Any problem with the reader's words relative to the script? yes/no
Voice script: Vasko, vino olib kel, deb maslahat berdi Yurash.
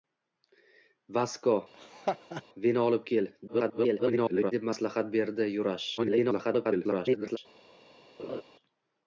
yes